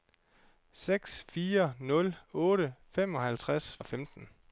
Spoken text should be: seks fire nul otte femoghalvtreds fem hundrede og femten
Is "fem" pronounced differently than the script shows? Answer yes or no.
yes